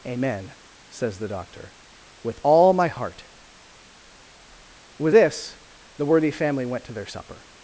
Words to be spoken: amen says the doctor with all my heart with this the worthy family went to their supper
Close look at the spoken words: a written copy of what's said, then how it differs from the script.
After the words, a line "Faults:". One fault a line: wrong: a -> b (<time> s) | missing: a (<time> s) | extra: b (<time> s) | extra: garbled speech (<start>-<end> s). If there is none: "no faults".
amen says the doctor with all my heart with this the worthy family went to their supper
Faults:
no faults